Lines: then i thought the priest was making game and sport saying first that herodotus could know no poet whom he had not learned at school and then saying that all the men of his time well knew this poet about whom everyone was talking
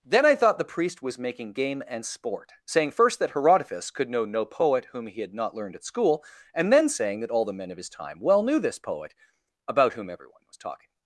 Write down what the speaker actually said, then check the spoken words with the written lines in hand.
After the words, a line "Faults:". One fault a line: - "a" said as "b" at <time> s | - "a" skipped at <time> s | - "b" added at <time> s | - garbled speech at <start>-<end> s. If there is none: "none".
then i thought the priest was making game and sport saying first that herodotus could know no poet whom he had not learned at school and then saying that all the men of his time well knew this poet about whom everyone was talking
Faults:
none